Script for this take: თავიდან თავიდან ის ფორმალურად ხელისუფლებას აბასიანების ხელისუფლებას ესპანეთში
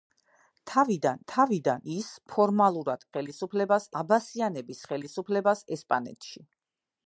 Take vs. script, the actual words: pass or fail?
pass